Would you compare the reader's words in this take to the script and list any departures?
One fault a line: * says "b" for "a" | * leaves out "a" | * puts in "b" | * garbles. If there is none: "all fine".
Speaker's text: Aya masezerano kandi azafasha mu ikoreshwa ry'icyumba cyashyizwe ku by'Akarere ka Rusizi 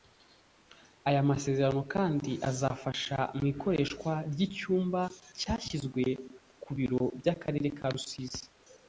* puts in "biro"